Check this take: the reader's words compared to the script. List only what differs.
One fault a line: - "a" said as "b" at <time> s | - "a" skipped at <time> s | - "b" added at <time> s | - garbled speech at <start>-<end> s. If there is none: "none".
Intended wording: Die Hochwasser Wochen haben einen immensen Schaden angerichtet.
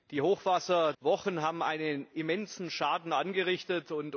none